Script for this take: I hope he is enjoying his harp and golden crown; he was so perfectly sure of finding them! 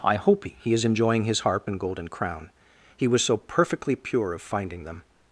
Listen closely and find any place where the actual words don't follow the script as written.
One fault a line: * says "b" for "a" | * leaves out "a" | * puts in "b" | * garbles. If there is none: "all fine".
* says "pure" for "sure"